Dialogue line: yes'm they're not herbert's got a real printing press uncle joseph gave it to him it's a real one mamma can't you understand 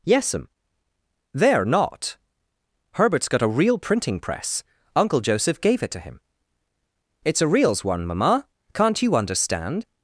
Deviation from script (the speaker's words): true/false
true